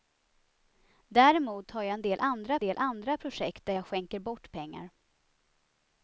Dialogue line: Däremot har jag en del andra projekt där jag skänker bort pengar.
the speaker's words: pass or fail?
fail